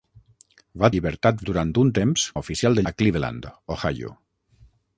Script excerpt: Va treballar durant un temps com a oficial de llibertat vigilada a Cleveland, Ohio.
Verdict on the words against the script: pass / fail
fail